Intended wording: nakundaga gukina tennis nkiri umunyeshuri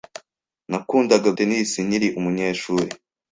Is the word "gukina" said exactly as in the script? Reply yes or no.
no